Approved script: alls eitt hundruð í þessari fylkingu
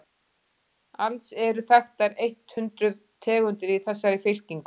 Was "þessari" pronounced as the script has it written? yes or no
yes